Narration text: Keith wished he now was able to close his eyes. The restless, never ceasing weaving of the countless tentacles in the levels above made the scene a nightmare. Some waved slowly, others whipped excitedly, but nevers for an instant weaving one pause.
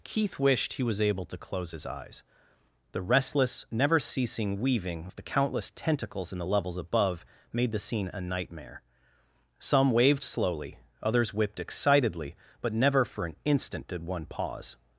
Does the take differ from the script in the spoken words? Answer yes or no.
yes